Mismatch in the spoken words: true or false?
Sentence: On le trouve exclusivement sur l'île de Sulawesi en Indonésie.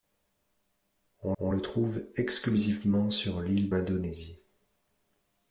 true